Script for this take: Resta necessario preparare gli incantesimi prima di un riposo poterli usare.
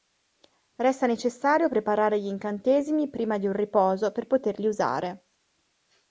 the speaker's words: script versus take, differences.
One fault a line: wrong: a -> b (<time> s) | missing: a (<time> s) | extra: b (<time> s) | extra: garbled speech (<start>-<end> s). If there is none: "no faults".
extra: per (4.1 s)